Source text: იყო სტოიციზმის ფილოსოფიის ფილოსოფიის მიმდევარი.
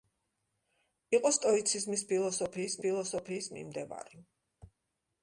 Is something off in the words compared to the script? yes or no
no